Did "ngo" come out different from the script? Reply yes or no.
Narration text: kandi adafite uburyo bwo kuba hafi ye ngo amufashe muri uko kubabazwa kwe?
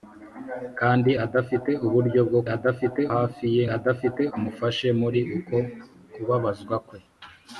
yes